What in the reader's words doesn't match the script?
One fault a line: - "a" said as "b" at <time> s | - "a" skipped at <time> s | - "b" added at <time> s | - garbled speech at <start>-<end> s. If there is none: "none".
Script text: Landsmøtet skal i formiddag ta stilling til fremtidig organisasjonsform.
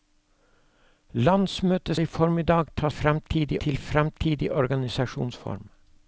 - "skal" skipped at 2.0 s
- "stilling" said as "fremtidig" at 2.9 s